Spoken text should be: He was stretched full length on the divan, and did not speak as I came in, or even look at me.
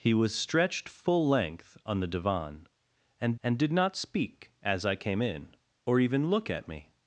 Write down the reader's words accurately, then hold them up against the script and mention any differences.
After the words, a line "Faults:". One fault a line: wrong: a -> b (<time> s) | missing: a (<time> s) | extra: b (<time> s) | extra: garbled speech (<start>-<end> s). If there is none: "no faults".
He was stretched full length on the divan, and and did not speak as I came in, or even look at me.
Faults:
extra: and (3.4 s)